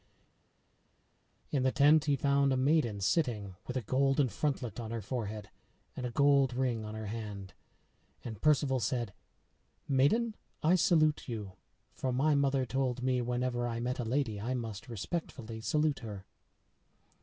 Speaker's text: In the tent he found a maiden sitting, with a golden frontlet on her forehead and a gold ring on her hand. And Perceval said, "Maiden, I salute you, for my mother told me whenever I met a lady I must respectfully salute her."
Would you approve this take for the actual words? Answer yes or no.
yes